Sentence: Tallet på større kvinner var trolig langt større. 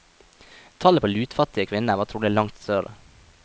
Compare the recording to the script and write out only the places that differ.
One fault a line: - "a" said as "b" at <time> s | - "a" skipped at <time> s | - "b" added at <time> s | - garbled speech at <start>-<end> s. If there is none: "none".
- "større" said as "lutfattige" at 1.1 s